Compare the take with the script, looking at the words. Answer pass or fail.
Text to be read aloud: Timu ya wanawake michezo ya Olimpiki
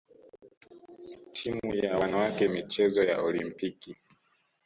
pass